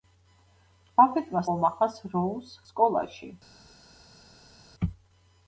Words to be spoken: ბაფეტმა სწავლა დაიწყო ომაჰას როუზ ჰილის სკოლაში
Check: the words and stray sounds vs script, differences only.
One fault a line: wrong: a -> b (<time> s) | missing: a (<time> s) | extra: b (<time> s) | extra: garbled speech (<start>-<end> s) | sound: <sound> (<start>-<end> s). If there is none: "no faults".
missing: სწავლა დაიწყო (1.4 s)
missing: ჰილის (2.5 s)